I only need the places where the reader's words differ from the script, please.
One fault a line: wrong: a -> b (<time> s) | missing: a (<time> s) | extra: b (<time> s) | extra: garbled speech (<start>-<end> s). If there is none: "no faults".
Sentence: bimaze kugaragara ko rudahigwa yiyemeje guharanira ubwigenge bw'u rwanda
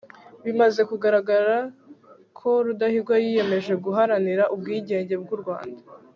no faults